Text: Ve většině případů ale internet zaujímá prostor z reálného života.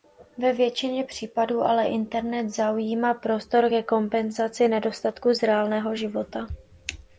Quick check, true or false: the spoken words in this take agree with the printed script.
false